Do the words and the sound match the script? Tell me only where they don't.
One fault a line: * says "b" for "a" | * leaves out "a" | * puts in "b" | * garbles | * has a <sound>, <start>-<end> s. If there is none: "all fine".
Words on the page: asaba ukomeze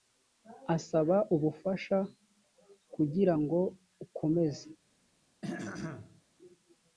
* puts in "ubufasha kugira ngo"
* has a throat clearing, 5.4-6.2 s